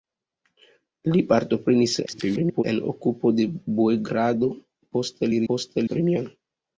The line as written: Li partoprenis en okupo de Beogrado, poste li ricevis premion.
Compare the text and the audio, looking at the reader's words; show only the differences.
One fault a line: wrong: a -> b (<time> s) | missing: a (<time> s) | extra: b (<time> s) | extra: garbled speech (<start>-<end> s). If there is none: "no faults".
extra: garbled speech (2.1-2.6 s)
wrong: ricevis -> poste (5.5 s)